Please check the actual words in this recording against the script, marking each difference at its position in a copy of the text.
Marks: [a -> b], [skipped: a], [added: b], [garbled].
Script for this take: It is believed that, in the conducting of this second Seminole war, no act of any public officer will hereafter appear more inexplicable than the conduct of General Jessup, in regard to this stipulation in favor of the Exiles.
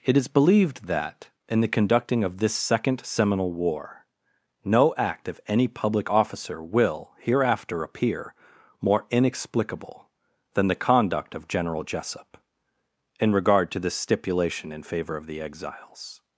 It is believed that, in the conducting of this second Seminole war, no act of any public officer will hereafter appear more inexplicable than the conduct of General Jessup, in regard to this stipulation in favor of the Exiles.